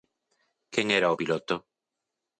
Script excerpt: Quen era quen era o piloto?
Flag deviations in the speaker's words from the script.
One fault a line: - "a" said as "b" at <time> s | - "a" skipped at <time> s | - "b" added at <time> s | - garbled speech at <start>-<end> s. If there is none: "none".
- "quen era" skipped at 1.1 s